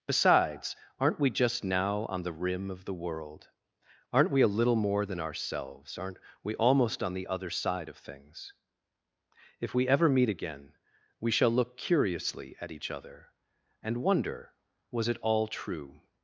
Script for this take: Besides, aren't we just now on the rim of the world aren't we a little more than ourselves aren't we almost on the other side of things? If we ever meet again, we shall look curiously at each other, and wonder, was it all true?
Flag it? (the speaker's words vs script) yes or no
no